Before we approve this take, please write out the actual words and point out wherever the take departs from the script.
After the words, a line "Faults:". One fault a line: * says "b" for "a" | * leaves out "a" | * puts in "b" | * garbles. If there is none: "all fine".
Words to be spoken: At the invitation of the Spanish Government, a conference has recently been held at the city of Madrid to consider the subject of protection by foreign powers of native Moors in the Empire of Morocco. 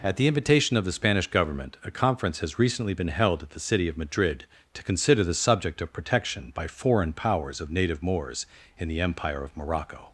At the invitation of the Spanish Government, a conference has recently been held at the city of Madrid to consider the subject of protection by foreign powers of native Moors in the Empire of Morocco.
Faults:
all fine